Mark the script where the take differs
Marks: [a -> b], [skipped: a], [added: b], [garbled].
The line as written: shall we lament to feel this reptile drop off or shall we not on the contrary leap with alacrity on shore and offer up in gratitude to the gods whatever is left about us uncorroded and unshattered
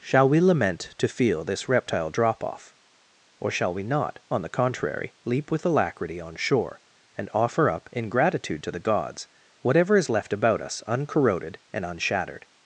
shall we lament to feel this reptile drop off or shall we not on the contrary leap with alacrity on shore and offer up in gratitude to the gods whatever is left about us uncorroded and unshattered